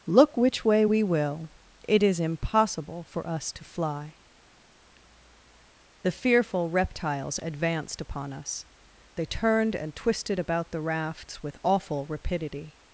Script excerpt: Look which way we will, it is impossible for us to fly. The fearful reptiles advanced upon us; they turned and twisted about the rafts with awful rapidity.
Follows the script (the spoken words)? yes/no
yes